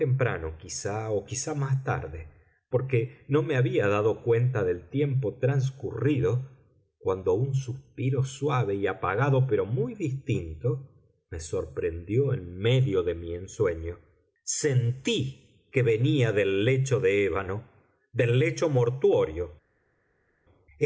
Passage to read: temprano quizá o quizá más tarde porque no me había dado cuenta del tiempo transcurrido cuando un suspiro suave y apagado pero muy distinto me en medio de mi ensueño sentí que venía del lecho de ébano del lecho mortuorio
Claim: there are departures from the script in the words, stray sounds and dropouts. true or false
true